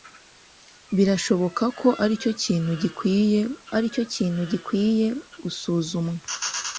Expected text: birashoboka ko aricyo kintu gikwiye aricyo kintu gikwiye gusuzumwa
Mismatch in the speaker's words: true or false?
false